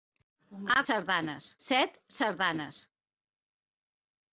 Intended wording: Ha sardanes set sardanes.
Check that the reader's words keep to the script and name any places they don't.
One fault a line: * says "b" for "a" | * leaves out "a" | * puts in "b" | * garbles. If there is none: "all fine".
all fine